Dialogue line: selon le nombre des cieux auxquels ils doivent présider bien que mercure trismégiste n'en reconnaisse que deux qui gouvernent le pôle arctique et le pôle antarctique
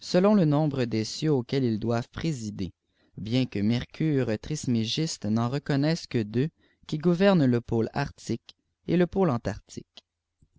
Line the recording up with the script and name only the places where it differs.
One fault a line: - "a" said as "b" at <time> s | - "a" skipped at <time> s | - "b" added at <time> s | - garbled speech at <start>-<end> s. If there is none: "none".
none